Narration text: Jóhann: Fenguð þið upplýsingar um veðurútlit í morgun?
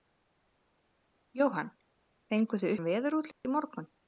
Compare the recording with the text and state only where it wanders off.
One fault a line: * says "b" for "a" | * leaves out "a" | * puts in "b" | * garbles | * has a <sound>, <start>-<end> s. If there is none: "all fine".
* leaves out "upplýsingar"
* has a dropout, 3.3-3.4 s